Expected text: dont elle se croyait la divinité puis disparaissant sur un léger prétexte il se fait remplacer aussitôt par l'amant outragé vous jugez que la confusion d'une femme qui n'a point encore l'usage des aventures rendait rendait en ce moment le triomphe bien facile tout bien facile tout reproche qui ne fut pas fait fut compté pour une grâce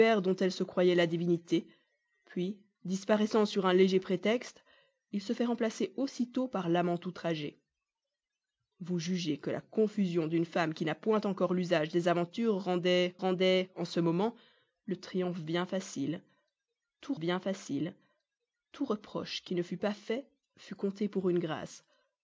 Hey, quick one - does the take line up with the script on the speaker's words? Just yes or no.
yes